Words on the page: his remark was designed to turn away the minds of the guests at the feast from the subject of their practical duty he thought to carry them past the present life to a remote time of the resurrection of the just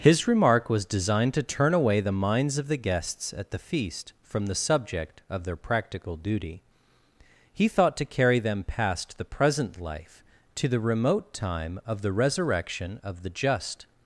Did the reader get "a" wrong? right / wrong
wrong